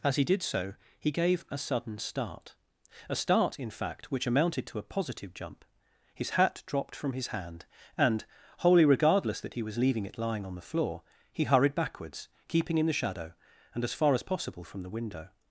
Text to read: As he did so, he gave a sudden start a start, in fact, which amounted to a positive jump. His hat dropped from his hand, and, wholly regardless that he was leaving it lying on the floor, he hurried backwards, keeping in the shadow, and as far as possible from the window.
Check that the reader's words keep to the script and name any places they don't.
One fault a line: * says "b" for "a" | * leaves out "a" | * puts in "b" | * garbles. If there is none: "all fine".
all fine